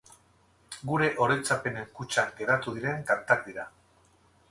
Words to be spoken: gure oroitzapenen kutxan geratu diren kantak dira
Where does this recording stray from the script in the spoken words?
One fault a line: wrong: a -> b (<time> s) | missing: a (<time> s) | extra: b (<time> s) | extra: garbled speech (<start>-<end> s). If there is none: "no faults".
no faults